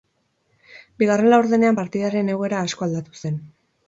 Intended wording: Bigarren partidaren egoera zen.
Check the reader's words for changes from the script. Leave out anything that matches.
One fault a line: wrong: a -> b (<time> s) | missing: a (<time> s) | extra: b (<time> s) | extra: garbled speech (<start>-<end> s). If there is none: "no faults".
extra: laurdenean (1.3 s)
extra: asko aldatu (2.7 s)